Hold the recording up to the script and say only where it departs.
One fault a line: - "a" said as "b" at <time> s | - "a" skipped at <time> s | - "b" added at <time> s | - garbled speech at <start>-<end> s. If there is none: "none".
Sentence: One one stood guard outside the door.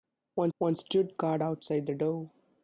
none